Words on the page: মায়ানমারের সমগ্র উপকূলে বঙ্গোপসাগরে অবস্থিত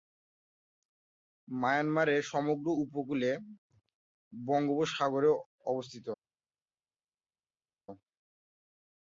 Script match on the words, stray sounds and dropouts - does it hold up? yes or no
yes